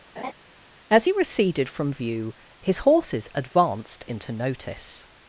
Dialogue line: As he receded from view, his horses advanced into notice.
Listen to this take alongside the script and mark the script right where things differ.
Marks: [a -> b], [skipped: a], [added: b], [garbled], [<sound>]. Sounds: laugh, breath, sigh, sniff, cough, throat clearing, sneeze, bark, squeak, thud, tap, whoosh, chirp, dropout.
[laugh] As he receded from view, his horses advanced into notice.